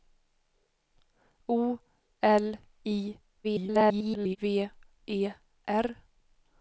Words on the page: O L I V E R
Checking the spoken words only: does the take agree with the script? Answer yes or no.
no